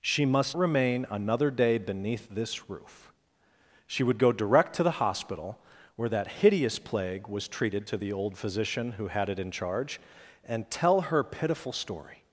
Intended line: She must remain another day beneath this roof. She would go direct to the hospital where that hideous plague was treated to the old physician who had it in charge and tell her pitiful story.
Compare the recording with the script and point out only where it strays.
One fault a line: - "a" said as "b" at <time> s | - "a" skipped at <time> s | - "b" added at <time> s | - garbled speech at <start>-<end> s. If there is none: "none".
none